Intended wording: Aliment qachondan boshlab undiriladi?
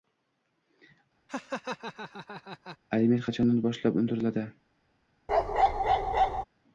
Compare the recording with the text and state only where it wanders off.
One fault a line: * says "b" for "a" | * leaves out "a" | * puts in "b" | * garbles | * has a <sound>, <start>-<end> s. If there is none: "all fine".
* has a laugh, 1.3-2.8 s
* has a bark, 5.3-6.4 s